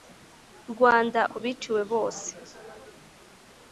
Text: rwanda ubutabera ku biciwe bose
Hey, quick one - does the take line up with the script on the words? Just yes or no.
no